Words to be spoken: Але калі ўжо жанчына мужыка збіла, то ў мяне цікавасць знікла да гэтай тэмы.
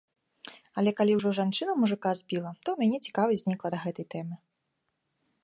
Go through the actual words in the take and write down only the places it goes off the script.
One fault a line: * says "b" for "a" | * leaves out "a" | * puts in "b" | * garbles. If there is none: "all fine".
all fine